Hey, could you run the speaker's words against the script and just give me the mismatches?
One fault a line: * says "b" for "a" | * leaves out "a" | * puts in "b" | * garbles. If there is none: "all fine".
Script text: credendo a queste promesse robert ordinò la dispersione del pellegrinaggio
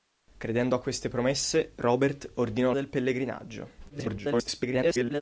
* leaves out "la dispersione"
* garbles